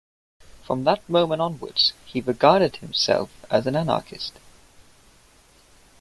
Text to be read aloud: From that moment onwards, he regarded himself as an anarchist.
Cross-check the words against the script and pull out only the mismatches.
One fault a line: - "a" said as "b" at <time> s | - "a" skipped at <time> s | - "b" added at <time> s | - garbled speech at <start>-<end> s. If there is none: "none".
none